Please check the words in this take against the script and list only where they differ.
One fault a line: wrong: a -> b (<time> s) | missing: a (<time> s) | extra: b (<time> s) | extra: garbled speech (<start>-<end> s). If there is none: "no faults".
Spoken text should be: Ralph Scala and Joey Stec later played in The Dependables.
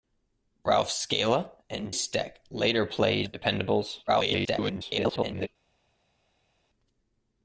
missing: Joey (1.9 s)
missing: in (3.3 s)
extra: garbled speech (4.1-5.5 s)